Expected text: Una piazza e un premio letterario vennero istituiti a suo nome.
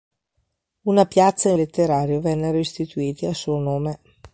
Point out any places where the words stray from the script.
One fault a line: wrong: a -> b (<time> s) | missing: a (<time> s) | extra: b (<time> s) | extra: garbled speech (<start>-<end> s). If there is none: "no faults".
missing: un premio (1.5 s)